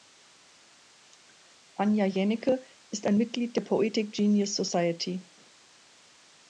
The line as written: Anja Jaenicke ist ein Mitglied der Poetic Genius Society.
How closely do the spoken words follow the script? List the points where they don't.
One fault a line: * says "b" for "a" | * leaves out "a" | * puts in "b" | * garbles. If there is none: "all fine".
all fine